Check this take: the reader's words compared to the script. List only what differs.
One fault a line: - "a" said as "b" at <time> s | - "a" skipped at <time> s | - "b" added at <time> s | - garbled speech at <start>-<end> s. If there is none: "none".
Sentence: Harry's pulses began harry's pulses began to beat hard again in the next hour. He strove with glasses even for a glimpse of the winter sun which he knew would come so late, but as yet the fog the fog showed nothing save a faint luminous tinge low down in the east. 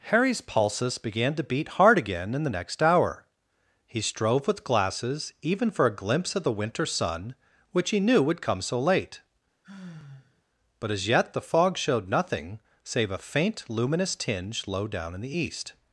- "harry's pulses began" skipped at 1.4 s
- "the fog" skipped at 11.8 s